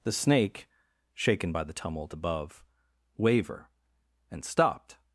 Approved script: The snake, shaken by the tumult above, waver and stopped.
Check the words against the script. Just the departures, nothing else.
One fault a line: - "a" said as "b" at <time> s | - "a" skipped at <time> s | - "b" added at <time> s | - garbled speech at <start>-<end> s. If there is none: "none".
none